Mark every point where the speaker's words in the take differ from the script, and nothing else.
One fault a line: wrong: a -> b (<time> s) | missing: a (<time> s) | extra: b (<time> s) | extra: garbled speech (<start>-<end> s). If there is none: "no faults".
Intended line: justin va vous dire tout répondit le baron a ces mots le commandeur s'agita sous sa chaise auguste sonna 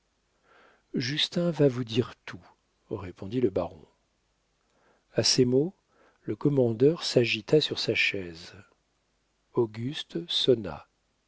wrong: sous -> sur (7.6 s)